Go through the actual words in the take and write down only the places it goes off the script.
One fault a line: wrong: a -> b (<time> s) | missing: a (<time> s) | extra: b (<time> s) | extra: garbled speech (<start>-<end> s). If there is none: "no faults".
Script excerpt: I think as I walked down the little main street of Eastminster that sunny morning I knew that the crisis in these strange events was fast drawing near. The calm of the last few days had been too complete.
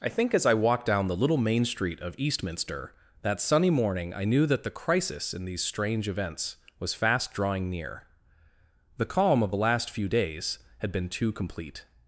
no faults